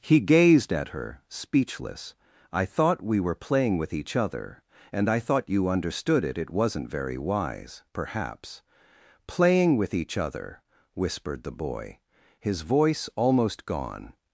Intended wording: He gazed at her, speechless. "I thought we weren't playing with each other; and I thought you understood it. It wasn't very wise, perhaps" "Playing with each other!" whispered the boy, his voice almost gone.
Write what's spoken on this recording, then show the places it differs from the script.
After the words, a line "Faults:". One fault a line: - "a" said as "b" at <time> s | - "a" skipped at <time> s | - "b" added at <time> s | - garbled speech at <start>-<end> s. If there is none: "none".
He gazed at her, speechless. "I thought we were playing with each other; and I thought you understood it. It wasn't very wise, perhaps" "Playing with each other!" whispered the boy, his voice almost gone.
Faults:
- "weren't" said as "were" at 3.2 s